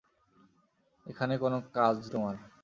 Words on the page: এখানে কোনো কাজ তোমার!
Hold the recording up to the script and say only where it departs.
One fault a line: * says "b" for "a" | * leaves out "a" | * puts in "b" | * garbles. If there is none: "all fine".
all fine